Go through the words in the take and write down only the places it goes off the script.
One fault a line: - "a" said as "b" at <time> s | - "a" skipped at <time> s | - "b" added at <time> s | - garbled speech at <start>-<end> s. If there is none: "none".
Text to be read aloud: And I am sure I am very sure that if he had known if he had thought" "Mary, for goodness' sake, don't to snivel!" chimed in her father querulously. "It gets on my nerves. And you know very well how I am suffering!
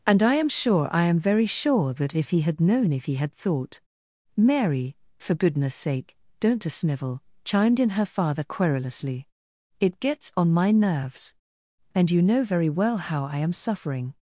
none